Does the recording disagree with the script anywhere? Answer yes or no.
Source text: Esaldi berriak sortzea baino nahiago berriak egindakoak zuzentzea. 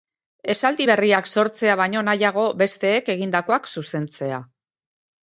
yes